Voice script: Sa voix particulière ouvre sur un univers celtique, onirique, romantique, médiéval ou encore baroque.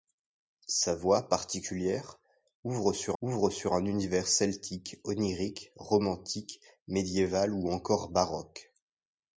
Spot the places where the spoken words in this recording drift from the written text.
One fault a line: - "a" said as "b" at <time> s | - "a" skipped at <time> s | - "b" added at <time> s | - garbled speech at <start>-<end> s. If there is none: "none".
- "ouvre sur" added at 3.2 s